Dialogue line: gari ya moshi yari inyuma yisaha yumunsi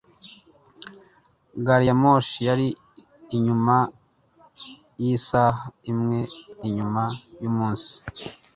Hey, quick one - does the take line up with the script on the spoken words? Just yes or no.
no